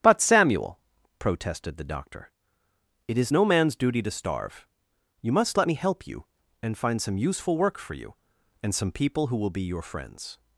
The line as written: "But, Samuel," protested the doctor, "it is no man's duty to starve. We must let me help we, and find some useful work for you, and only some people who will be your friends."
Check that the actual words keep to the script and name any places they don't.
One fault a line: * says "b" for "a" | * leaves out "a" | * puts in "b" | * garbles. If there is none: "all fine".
* says "You" for "We"
* says "you" for "we"
* leaves out "only"